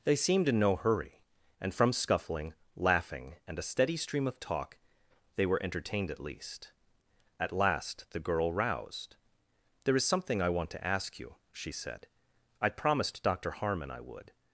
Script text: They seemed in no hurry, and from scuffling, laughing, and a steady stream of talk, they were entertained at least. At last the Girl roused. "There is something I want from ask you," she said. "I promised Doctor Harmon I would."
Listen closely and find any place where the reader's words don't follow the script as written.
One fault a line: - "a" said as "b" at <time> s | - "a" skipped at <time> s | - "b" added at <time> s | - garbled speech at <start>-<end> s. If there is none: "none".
- "from" said as "to" at 10.7 s